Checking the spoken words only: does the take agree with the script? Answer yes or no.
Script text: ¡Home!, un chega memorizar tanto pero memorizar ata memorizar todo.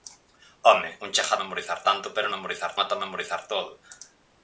yes